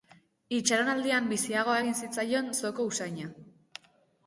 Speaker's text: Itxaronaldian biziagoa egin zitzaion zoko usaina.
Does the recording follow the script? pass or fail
pass